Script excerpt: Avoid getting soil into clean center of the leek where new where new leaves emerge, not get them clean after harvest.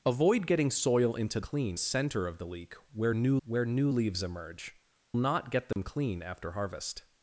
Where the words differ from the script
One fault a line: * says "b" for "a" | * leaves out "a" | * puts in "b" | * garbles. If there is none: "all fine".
all fine